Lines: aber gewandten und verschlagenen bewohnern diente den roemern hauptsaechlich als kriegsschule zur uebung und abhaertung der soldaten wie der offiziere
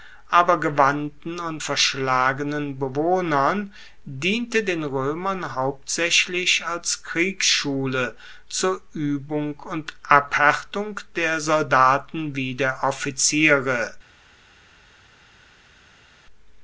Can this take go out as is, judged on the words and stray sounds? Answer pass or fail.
pass